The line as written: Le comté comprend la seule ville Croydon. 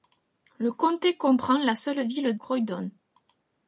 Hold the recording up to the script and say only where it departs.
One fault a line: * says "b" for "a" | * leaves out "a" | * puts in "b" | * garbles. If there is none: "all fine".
all fine